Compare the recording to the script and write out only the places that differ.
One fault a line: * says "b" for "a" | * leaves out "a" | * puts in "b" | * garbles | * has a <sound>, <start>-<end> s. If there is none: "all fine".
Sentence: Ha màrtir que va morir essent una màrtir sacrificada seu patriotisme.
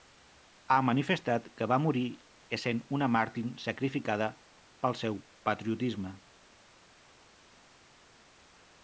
* says "manifestat" for "màrtir"
* puts in "pel"